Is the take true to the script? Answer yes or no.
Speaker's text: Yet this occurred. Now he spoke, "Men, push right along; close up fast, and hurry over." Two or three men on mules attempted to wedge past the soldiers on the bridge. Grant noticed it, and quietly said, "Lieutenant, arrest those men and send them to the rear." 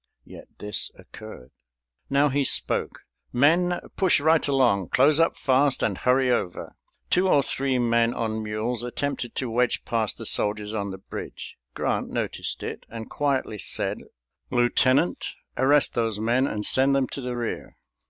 yes